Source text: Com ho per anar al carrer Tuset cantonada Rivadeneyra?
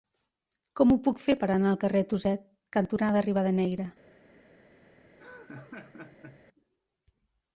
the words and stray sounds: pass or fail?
fail